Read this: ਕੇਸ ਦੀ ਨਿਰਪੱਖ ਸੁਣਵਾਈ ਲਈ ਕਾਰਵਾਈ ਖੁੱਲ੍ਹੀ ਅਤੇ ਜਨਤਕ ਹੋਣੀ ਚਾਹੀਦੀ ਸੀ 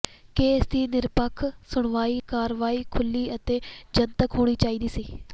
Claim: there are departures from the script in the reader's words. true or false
true